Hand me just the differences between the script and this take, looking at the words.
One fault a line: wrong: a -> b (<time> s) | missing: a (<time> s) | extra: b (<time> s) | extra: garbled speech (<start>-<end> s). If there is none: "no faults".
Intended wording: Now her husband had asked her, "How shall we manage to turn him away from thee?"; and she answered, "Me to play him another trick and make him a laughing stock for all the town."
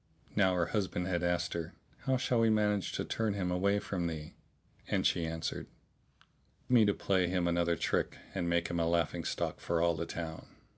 no faults